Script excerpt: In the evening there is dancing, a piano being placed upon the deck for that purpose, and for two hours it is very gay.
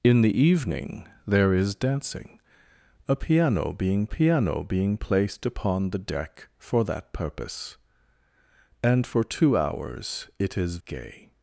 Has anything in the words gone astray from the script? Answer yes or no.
yes